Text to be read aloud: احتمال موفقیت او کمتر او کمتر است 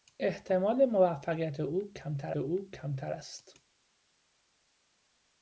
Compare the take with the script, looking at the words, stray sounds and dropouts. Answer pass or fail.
pass